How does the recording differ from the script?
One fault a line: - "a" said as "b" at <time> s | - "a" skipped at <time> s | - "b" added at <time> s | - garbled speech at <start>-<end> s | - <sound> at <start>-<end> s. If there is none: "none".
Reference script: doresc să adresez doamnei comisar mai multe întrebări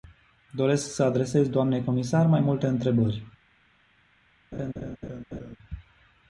- laugh at 4.5-5.6 s